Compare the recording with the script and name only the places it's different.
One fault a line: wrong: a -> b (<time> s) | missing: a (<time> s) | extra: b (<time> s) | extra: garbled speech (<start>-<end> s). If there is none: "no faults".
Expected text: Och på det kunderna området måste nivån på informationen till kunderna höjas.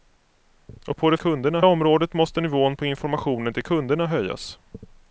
no faults